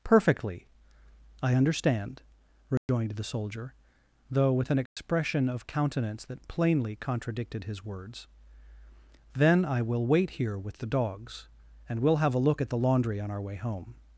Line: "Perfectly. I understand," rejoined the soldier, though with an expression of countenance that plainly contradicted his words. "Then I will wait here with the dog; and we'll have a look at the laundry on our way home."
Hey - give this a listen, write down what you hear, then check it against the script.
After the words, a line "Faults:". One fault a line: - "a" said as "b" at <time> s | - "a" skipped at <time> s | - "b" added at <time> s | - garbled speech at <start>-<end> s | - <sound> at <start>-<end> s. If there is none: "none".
"Perfectly. I understand," rejoined the soldier, though with an expression of countenance that plainly contradicted his words. "Then I will wait here with the dogs; and we'll have a look at the laundry on our way home."
Faults:
- dropout at 2.8-2.9 s
- dropout at 4.9-5.0 s
- "dog" said as "dogs" at 10.9 s